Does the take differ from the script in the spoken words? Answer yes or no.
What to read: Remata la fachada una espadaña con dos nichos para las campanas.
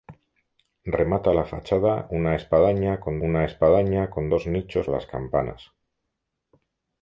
yes